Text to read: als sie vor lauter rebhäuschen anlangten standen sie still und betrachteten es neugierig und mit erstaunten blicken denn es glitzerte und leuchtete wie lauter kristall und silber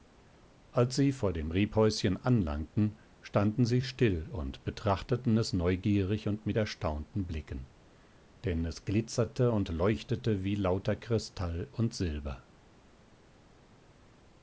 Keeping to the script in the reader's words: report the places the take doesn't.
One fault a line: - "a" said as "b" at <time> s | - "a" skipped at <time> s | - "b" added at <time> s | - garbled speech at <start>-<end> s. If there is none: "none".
- "lauter" said as "dem" at 1.3 s